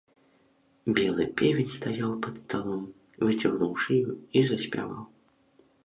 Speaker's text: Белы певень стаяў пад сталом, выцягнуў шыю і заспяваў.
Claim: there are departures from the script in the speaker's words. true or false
false